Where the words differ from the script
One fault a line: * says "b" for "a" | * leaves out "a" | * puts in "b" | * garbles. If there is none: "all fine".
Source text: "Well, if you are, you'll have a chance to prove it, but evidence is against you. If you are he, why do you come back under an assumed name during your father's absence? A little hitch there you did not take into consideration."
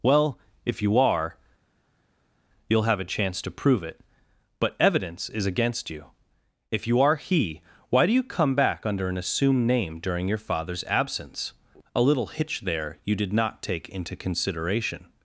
all fine